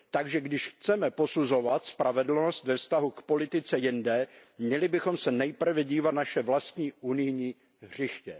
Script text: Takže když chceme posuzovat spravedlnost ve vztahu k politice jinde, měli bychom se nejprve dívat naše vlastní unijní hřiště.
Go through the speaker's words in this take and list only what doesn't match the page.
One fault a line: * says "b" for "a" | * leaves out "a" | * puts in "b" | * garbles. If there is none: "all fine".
all fine